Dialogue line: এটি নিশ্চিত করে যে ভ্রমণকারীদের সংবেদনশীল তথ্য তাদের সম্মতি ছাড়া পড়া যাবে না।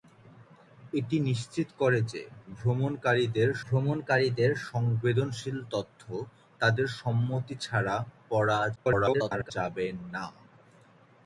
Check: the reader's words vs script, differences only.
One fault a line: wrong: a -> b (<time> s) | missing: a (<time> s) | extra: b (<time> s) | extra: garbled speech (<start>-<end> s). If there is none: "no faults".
extra: ভ্রমণকারীদের (3.6 s)
extra: garbled speech (8.7-9.5 s)